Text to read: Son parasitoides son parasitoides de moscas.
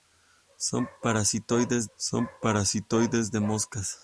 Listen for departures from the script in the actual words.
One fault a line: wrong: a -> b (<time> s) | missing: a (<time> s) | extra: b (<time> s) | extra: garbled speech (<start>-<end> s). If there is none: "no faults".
no faults